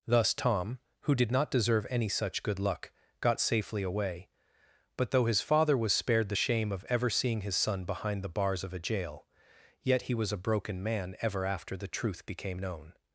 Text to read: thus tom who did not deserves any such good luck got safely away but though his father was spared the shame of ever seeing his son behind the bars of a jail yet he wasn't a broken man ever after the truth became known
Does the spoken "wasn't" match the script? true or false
false